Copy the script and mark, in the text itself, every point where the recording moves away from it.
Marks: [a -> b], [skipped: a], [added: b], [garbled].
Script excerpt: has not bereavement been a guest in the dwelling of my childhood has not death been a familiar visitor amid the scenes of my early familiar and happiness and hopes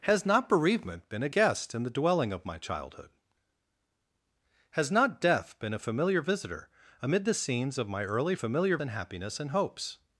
has not bereavement been a guest in the dwelling of my childhood has not death been a familiar visitor amid the scenes of my early familiar and happiness and hopes